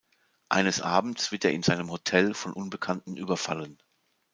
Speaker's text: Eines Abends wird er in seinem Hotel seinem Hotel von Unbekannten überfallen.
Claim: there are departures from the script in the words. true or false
true